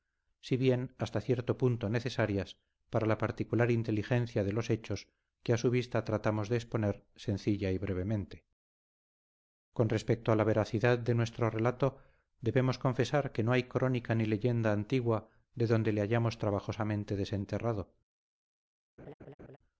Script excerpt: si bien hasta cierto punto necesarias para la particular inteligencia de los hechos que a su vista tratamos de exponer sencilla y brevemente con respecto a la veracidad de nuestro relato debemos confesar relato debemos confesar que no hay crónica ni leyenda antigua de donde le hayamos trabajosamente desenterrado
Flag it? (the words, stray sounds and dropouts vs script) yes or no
yes